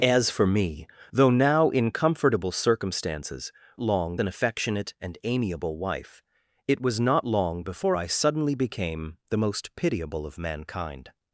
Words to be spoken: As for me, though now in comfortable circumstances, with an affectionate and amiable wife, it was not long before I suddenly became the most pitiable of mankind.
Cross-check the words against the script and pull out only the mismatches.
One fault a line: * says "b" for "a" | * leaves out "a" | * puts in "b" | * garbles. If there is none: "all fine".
* says "long" for "with"